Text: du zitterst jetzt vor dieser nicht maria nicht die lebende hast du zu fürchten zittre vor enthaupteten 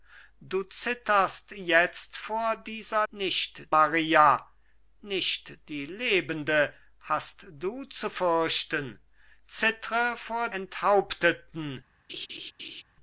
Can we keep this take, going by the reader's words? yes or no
yes